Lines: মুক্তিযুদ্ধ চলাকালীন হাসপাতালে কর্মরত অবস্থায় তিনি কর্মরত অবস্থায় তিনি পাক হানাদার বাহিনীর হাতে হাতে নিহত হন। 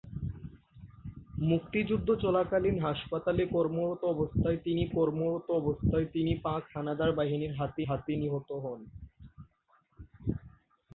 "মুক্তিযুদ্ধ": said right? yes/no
yes